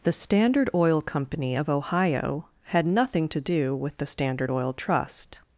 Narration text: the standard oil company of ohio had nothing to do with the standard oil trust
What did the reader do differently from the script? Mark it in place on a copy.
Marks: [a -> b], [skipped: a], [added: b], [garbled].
the standard oil company of ohio had nothing to do with the standard oil trust